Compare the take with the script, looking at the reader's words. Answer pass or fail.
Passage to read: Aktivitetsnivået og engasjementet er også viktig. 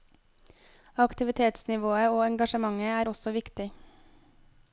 pass